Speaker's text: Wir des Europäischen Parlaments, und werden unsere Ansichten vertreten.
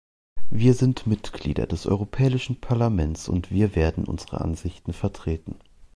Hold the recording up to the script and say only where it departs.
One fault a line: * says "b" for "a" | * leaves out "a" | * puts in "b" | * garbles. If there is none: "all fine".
* puts in "sind Mitglieder"
* puts in "wir"